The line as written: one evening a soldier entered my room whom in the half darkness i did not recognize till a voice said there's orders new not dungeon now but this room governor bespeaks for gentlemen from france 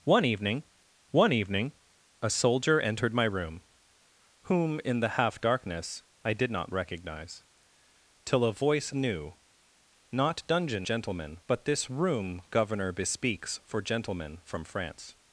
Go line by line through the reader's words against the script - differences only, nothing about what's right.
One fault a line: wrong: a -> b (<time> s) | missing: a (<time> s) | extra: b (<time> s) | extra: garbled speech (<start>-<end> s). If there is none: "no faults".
extra: one evening (1.1 s)
missing: said there's orders (8.9 s)
wrong: now -> gentlemen (10.8 s)